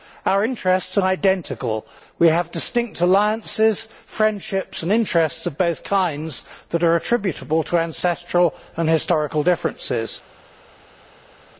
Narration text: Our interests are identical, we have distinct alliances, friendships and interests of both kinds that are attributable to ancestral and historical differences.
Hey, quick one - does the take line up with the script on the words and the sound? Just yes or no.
yes